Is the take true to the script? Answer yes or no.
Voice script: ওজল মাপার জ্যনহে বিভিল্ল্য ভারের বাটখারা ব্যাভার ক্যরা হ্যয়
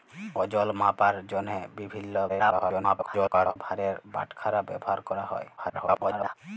no